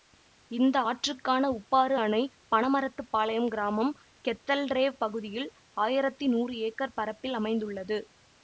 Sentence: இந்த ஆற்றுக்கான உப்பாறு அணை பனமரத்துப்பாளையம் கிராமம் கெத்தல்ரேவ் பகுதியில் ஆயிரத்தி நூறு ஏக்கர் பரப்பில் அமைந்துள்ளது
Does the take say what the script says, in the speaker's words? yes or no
yes